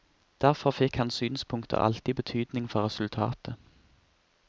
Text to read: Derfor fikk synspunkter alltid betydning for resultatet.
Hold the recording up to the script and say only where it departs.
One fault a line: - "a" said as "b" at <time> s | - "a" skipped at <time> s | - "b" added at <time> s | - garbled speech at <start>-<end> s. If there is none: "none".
- "hans" added at 1.0 s